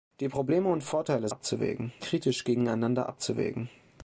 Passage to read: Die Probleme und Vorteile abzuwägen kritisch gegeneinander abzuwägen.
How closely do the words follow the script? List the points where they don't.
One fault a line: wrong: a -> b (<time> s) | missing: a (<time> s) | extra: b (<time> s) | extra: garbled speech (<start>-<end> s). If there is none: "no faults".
no faults